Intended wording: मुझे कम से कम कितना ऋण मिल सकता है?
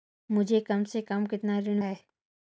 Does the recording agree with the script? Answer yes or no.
no